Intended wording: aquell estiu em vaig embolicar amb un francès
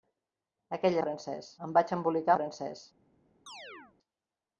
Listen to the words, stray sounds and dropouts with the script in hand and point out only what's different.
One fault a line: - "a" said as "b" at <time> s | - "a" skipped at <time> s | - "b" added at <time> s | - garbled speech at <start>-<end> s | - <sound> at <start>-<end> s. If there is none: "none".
- "estiu" said as "francès" at 1.0 s
- "amb un" skipped at 2.4 s
- chirp at 3.5-4.0 s